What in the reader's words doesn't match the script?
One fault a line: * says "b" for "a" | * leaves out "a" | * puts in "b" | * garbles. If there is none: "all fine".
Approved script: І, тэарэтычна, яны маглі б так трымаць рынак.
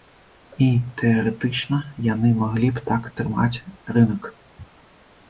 all fine